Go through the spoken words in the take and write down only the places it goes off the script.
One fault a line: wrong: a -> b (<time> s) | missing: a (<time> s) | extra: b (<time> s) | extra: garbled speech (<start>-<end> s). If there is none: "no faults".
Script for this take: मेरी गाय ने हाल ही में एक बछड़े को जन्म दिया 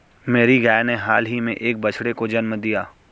no faults